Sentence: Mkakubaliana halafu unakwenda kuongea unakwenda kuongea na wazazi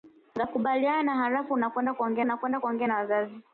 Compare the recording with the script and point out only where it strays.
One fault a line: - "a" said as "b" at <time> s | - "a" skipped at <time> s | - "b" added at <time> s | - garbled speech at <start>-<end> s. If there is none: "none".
none